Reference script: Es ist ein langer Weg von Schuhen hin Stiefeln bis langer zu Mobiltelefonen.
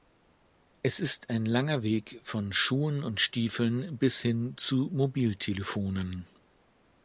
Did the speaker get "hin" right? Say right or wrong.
wrong